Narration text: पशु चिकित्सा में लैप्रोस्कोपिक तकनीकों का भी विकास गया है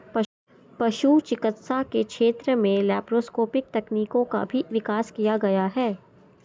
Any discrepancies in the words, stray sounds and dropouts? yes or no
yes